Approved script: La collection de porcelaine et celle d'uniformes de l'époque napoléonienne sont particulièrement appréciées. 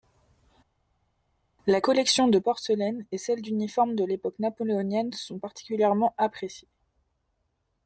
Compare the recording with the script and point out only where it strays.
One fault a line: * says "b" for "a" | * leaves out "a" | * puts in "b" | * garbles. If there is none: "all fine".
all fine